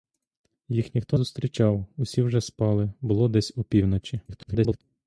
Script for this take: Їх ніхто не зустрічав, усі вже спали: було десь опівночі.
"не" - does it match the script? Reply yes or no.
no